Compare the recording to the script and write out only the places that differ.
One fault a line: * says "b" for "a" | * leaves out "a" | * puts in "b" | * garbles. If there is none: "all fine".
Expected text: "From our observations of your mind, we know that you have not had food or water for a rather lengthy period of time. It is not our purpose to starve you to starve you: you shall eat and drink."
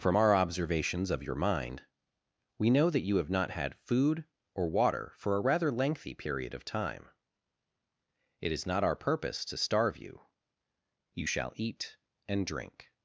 * leaves out "to starve you"